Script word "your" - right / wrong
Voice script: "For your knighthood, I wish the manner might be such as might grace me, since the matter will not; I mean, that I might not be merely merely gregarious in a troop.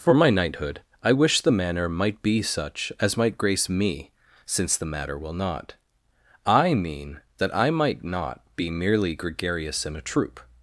wrong